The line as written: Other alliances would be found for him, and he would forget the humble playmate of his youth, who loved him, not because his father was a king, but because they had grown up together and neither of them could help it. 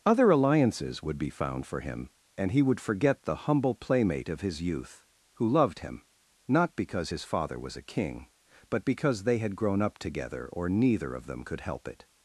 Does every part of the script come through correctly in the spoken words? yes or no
no